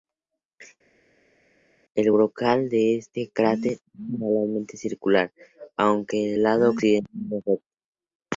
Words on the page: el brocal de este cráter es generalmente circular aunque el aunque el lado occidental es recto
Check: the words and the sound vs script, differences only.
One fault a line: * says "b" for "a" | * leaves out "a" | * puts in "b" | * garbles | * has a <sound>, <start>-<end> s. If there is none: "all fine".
* leaves out "aunque el"